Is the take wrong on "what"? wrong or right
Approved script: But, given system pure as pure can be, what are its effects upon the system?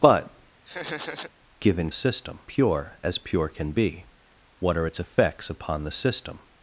right